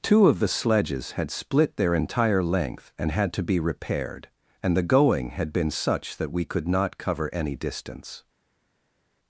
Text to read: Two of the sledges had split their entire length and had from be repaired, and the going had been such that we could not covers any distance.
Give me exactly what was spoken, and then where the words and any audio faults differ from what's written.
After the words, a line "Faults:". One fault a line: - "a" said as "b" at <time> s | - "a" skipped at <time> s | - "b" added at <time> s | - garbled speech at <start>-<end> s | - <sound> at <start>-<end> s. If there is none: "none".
Two of the sledges had split their entire length and had to be repaired, and the going had been such that we could not cover any distance.
Faults:
- "from" said as "to" at 3.3 s
- "covers" said as "cover" at 7.0 s